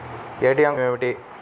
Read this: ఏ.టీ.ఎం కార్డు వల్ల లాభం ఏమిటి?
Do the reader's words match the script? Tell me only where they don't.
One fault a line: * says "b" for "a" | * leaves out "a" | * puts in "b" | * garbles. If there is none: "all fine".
* leaves out "కార్డు వల్ల లాభం"